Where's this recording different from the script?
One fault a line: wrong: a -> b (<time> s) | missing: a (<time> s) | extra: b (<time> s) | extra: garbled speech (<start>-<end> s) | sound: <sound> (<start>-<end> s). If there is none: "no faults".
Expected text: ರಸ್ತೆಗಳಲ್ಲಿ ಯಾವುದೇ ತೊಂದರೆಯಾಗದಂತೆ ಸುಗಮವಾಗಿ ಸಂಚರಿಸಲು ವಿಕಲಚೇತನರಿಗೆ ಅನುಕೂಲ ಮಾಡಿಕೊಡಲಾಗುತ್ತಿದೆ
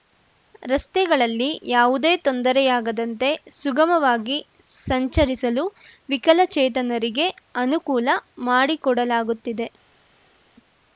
no faults